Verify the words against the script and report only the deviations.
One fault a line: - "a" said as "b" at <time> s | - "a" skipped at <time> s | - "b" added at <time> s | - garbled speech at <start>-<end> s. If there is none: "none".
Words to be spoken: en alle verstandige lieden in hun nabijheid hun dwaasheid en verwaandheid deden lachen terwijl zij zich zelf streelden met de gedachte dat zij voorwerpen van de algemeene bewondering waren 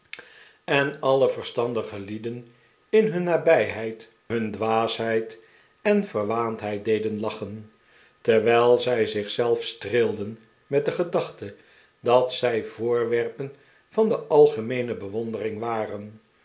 none